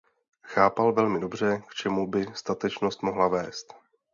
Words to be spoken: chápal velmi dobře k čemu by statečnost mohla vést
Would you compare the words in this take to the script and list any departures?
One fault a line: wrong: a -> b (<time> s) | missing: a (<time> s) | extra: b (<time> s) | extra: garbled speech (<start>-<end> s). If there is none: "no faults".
no faults